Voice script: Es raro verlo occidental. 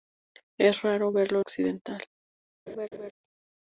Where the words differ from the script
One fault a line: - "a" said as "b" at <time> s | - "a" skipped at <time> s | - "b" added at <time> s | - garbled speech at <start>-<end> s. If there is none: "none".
none